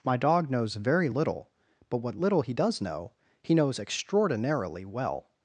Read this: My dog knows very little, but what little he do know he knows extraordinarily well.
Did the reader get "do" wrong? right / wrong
wrong